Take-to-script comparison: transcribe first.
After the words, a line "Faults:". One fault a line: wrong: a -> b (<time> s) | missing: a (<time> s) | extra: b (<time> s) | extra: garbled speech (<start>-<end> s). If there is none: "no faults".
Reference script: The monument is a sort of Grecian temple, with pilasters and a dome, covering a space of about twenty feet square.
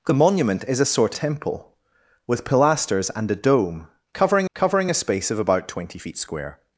The monument is a sort temple, with pilasters and a dome, covering covering a space of about twenty feet square.
Faults:
missing: of Grecian (1.1 s)
extra: covering (4.6 s)